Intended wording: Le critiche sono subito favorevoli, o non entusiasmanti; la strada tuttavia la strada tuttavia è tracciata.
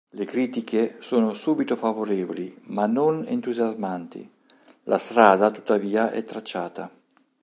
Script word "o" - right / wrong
wrong